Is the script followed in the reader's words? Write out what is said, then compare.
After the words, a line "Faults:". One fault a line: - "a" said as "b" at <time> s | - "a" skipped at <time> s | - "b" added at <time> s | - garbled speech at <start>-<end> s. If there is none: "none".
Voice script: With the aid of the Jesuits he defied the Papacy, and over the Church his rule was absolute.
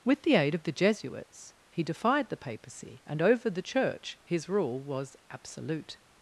With the aid of the Jesuits he defied the Papacy, and over the Church his rule was absolute.
Faults:
none